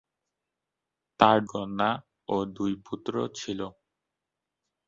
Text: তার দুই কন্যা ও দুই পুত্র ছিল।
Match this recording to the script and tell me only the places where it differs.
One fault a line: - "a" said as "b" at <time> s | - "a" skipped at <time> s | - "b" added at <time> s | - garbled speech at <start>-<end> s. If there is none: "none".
- "দুই" skipped at 1.4 s